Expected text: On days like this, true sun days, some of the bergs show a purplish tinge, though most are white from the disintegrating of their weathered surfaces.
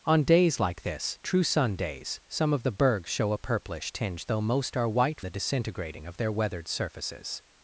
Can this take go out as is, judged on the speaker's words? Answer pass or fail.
fail